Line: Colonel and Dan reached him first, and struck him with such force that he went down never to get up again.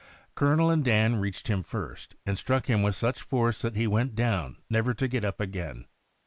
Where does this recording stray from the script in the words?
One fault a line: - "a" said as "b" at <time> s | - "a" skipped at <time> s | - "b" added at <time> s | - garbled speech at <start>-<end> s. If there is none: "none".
none